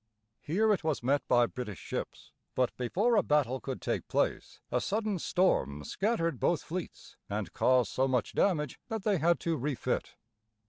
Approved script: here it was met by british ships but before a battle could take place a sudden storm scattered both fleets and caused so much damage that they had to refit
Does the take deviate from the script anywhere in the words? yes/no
no